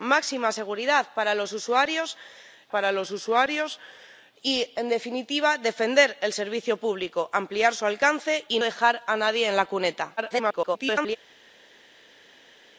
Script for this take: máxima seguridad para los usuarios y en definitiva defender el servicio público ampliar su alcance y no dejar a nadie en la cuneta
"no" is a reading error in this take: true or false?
true